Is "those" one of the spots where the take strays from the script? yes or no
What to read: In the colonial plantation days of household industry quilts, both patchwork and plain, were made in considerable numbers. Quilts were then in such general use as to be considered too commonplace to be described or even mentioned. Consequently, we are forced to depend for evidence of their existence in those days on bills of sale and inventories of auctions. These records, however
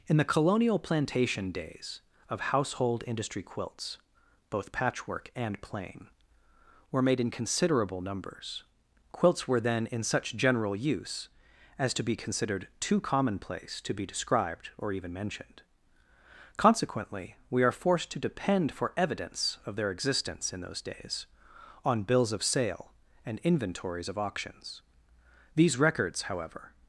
no